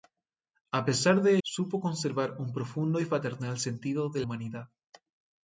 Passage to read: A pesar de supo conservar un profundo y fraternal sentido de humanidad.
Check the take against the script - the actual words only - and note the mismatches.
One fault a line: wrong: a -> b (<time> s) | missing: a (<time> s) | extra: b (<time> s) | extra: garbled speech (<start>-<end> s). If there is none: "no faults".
no faults